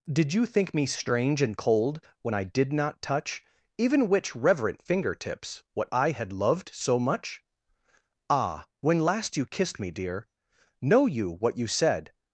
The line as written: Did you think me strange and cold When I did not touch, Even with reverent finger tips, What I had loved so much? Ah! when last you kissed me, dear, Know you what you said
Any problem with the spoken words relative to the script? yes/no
yes